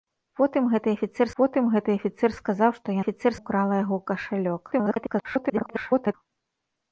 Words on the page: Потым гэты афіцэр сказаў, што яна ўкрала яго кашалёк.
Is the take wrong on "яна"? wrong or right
wrong